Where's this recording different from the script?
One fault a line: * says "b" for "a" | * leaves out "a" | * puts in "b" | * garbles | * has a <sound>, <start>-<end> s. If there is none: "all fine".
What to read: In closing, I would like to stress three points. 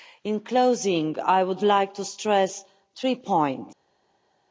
all fine